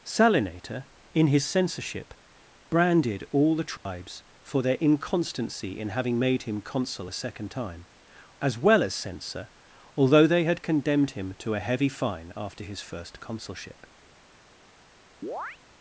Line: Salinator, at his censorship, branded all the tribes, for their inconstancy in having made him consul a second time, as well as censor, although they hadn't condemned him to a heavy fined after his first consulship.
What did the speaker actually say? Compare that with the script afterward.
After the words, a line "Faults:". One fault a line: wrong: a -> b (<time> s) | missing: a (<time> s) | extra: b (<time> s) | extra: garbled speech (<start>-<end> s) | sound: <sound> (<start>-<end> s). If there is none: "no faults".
Salinator, in his censorship, branded all the tribes, for their inconstancy in having made him consul a second time, as well as censor, although they had condemned him to a heavy fine after his first consulship.
Faults:
wrong: at -> in (1.1 s)
sound: dropout (3.8-3.9 s)
wrong: hadn't -> had (10.4 s)
wrong: fined -> fine (11.9 s)
sound: chirp (15.2-15.6 s)